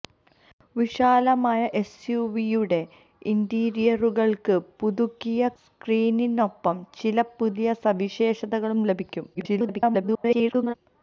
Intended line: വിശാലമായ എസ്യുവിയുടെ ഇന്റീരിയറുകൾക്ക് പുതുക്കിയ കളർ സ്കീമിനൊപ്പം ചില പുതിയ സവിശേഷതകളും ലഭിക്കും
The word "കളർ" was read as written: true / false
false